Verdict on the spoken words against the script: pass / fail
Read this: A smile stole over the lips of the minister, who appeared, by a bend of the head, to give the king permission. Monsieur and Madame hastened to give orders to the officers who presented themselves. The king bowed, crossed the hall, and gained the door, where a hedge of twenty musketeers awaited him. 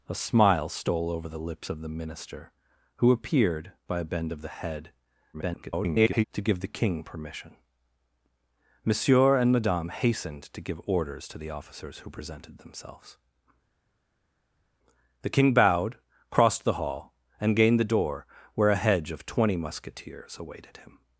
fail